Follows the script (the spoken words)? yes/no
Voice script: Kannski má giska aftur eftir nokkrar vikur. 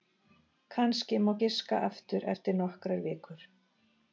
yes